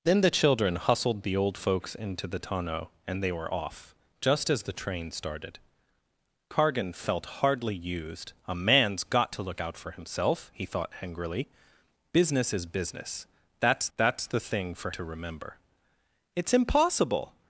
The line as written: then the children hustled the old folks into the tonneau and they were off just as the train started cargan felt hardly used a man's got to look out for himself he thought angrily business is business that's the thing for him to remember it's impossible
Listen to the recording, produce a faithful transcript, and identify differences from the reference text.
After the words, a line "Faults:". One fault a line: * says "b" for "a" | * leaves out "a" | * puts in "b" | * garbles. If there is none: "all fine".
then the children hustled the old folks into the tonneau and they were off just as the train started cargan felt hardly used a man's got to look out for himself he thought angrily business is business that's that's the thing for to remember it's impossible
Faults:
* puts in "that's"
* leaves out "him"